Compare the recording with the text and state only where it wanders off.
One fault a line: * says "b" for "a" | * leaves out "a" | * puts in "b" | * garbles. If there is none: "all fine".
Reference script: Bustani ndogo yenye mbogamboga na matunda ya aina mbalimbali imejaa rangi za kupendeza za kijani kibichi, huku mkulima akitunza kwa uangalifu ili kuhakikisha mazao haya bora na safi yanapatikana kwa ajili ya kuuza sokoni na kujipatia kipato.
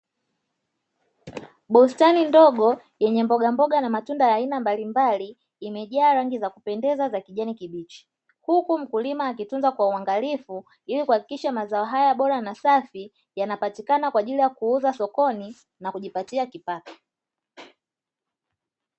all fine